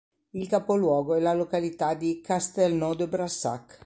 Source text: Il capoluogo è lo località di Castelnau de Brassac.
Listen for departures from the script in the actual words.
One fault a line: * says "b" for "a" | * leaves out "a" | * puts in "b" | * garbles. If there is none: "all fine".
* says "la" for "lo"